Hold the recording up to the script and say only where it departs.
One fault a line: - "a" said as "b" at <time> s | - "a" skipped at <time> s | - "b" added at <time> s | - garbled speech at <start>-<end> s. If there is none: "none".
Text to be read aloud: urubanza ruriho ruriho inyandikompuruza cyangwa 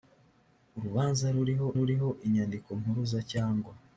none